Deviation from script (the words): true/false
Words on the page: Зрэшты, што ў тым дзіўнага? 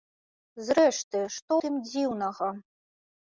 true